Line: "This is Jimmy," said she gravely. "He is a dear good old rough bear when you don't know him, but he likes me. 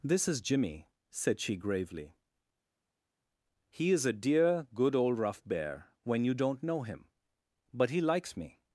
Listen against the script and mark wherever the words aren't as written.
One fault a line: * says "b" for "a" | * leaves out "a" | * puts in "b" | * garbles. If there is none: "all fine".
all fine